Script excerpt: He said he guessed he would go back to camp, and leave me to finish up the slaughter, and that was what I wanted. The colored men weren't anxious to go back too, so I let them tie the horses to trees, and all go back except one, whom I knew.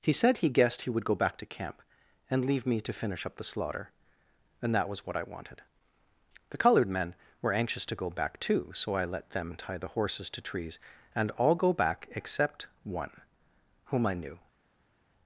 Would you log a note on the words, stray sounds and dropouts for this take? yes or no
yes